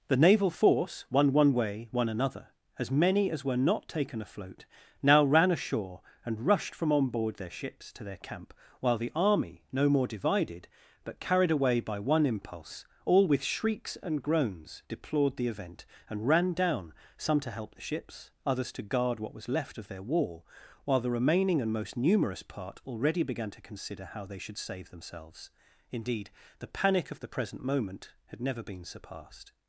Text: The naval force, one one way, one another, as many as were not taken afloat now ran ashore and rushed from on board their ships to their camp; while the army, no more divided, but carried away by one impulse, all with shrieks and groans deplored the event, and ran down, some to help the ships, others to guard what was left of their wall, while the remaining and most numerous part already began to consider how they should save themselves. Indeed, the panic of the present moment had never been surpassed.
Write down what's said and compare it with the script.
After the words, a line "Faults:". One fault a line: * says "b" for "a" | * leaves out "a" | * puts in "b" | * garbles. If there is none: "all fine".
The naval force, one one way, one another, as many as were not taken afloat now ran ashore and rushed from on board their ships to their camp; while the army, no more divided, but carried away by one impulse, all with shrieks and groans deplored the event, and ran down, some to help the ships, others to guard what was left of their wall, while the remaining and most numerous part already began to consider how they should save themselves. Indeed, the panic of the present moment had never been surpassed.
Faults:
all fine